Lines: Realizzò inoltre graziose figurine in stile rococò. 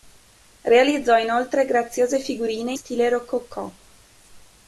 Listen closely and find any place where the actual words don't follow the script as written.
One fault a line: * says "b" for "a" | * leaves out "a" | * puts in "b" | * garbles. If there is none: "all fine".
* leaves out "in"